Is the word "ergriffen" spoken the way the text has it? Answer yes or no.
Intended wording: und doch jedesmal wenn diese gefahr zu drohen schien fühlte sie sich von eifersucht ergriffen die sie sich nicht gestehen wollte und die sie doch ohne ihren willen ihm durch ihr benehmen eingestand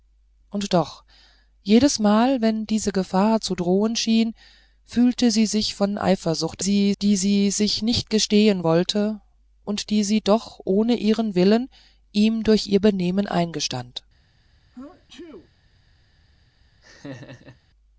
no